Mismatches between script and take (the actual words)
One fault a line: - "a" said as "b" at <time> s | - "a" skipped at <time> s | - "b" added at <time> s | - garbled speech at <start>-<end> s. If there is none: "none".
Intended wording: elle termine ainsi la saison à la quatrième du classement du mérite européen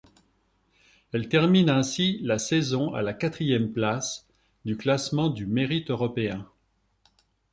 - "place" added at 3.7 s